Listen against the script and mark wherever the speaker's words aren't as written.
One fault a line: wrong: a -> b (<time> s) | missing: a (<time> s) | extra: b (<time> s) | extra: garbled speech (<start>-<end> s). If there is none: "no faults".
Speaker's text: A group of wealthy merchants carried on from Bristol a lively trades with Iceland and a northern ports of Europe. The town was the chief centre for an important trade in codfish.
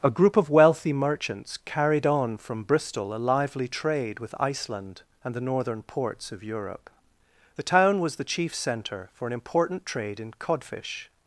wrong: trades -> trade (3.7 s)
wrong: a -> the (5.3 s)